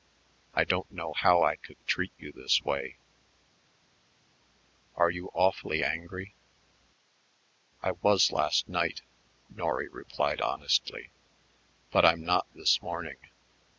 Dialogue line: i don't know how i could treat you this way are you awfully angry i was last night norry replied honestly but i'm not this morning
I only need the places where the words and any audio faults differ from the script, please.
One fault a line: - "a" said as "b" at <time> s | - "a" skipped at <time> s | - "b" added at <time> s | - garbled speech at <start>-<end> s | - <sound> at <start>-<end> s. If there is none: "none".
none